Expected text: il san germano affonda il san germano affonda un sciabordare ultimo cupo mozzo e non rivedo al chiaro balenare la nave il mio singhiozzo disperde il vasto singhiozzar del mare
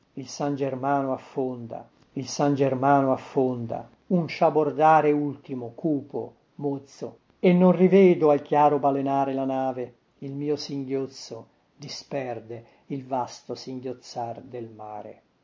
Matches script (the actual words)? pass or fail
pass